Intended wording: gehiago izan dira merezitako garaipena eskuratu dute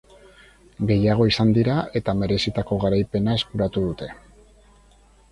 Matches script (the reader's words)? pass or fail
fail